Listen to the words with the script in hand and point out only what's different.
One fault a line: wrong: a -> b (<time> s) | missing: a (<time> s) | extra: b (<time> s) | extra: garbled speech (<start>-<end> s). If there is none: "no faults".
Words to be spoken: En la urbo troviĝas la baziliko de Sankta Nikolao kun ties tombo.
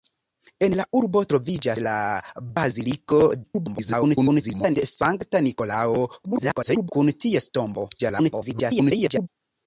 extra: garbled speech (3.4-4.8 s)
extra: garbled speech (6.2-6.9 s)
extra: garbled speech (8.0-9.3 s)